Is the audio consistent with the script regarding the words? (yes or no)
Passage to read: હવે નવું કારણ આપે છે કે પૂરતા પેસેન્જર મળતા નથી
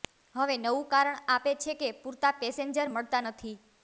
yes